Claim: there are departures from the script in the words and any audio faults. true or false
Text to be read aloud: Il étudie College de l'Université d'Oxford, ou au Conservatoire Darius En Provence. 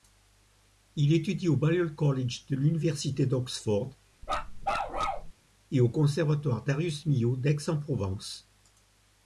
true